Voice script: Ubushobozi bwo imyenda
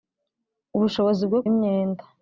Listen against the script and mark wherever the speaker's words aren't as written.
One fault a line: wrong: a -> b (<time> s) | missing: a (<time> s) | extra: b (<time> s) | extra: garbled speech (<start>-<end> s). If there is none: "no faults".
no faults